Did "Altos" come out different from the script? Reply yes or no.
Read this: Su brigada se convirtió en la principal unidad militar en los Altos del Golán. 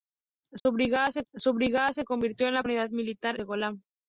yes